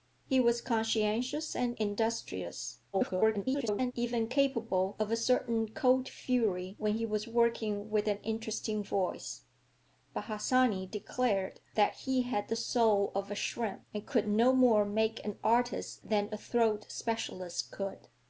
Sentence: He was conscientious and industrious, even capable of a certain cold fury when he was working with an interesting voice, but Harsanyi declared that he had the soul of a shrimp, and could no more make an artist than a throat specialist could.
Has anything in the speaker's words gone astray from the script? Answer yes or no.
yes